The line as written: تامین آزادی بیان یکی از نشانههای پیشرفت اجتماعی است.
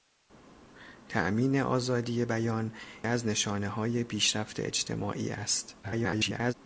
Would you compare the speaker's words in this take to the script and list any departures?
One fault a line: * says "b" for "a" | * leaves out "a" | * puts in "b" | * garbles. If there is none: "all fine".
* leaves out "یکی"
* garbles